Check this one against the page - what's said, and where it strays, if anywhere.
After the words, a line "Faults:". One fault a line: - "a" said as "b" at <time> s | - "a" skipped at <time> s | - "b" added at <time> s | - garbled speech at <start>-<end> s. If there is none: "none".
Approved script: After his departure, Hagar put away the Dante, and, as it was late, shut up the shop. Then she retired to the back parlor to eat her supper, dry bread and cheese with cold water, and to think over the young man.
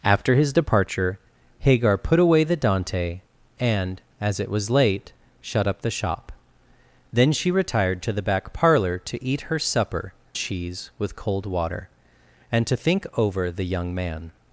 After his departure, Hagar put away the Dante, and, as it was late, shut up the shop. Then she retired to the back parlor to eat her supper, cheese with cold water, and to think over the young man.
Faults:
- "dry bread and" skipped at 10.1 s